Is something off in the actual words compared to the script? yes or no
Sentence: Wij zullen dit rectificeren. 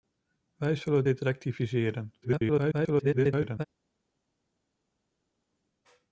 yes